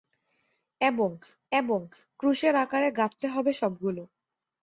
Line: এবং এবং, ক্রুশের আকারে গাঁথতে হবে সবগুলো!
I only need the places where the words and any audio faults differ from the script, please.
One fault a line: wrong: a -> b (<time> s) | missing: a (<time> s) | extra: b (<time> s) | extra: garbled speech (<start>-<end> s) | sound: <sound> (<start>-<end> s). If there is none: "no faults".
no faults